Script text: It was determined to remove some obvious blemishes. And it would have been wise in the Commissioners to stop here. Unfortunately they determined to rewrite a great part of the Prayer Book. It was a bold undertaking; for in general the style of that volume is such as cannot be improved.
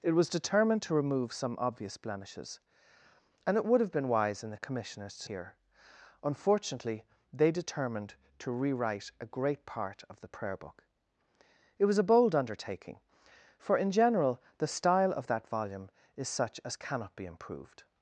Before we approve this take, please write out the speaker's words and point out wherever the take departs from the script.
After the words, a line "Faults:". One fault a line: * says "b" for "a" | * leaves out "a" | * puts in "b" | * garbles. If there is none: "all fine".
It was determined to remove some obvious blemishes. And it would have been wise in the Commissioners to here. Unfortunately they determined to rewrite a great part of the Prayer Book. It was a bold undertaking; for in general the style of that volume is such as cannot be improved.
Faults:
* leaves out "stop"